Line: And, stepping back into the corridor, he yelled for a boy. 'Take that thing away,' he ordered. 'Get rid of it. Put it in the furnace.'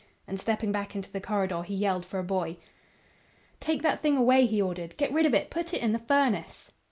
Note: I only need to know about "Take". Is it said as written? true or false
true